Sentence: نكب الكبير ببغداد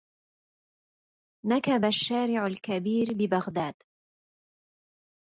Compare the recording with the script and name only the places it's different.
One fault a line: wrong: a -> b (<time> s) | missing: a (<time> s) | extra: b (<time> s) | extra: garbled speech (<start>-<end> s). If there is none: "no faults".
extra: الشارع (1.8 s)